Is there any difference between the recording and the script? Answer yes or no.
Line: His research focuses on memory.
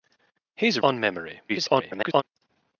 yes